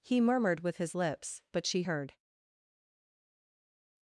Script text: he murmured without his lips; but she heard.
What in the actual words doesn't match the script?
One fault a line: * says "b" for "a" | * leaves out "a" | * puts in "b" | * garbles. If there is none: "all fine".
* says "with" for "without"